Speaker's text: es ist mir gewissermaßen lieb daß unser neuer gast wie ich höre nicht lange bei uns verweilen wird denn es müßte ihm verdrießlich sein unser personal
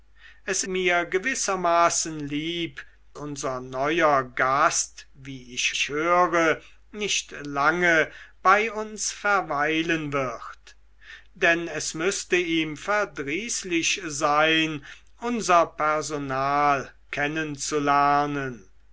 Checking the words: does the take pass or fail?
fail